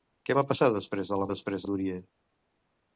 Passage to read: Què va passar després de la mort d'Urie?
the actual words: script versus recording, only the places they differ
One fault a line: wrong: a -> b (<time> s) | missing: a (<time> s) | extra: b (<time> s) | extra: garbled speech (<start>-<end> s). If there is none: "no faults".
wrong: mort -> després (1.3 s)